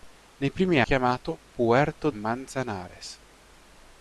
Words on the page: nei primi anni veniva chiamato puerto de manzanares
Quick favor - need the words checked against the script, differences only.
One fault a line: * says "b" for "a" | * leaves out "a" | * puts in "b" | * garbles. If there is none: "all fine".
* leaves out "anni veniva"
* leaves out "de"